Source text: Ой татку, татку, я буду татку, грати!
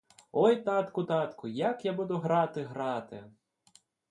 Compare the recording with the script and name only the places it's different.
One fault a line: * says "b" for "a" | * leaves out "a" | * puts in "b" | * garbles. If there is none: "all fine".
* puts in "як"
* says "грати" for "татку"